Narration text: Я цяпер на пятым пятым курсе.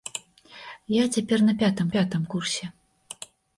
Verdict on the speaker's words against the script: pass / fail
pass